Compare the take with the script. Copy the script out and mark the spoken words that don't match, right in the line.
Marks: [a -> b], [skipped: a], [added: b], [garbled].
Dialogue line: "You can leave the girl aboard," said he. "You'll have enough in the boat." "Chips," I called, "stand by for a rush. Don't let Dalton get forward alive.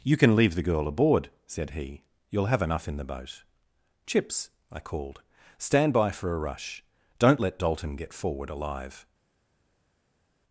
"You can leave the girl aboard," said he. "You'll have enough in the boat." "Chips," I called, "stand by for a rush. Don't let Dalton get forward alive.